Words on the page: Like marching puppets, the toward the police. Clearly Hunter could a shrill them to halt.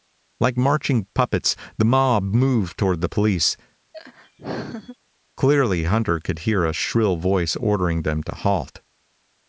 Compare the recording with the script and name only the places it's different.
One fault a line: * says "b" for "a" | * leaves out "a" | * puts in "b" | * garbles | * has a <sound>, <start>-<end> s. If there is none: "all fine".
* puts in "mob moved"
* has a laugh, 3.9-5.0 s
* puts in "hear"
* puts in "voice ordering"